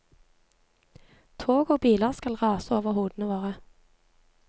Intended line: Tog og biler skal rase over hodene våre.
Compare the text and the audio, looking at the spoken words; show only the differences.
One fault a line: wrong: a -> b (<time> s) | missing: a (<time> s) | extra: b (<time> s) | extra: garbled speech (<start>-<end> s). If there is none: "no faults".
no faults